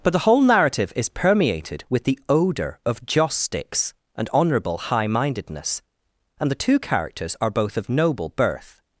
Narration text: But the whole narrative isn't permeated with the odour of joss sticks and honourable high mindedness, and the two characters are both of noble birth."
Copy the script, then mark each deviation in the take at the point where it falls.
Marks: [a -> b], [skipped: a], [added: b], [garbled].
But the whole narrative [isn't -> is] permeated with the odour of joss sticks and honourable high mindedness, and the two characters are both of noble birth."